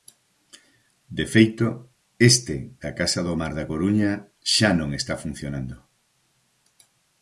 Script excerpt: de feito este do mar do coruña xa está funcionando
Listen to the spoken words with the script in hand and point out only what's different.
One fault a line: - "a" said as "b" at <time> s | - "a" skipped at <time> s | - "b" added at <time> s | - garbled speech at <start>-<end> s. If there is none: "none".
- "da casa" added at 2.8 s
- "do" said as "da" at 3.6 s
- "non" added at 4.8 s